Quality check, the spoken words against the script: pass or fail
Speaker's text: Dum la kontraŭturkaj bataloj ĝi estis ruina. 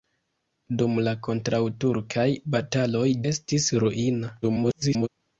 fail